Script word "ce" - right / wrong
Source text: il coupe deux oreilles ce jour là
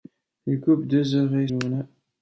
wrong